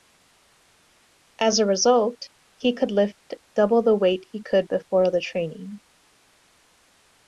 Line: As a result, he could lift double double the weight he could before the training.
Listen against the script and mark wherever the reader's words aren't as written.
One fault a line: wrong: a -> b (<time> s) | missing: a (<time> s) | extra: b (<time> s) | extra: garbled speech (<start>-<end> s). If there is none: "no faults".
missing: double (3.8 s)